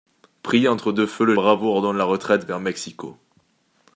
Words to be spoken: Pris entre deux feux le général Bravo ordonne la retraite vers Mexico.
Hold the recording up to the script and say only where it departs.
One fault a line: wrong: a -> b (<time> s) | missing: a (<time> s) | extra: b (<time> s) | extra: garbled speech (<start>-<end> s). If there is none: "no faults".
missing: général (1.4 s)